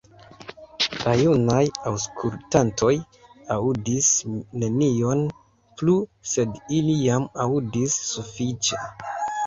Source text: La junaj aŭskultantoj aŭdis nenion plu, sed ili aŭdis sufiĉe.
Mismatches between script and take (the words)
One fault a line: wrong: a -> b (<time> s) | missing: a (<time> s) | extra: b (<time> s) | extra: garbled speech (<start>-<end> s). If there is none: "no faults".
extra: jam (7.1 s)